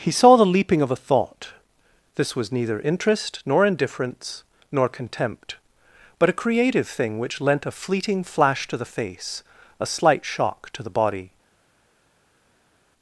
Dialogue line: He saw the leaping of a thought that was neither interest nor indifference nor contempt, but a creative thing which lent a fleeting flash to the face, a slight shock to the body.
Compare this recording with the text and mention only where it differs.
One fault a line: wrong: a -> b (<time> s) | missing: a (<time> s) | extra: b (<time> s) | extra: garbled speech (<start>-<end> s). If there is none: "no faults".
wrong: that -> this (2.1 s)